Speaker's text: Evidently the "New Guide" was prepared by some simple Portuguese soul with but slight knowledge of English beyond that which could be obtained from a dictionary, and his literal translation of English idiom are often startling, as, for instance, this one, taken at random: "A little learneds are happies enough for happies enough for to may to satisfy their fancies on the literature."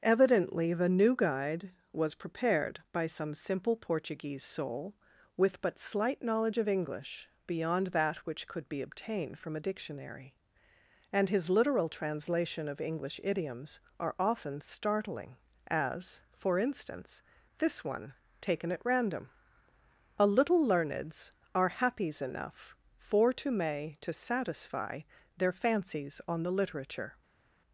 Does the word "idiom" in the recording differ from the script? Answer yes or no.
yes